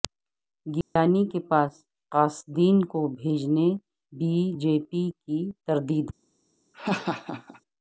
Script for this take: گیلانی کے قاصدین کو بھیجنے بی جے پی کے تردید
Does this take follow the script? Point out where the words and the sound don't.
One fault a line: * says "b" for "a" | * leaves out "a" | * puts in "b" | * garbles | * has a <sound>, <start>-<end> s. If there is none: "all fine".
* has a dropout, 0.8-1.0 s
* puts in "پاس"
* says "کی" for "کے"
* has a laugh, 6.7-7.6 s